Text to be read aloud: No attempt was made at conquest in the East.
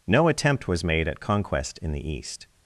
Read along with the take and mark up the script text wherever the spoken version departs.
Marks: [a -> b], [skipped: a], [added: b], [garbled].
No attempt was made at conquest in the East.